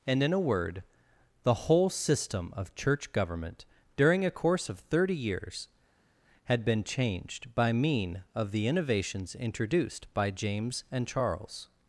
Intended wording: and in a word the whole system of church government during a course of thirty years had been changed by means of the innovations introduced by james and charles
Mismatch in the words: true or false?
true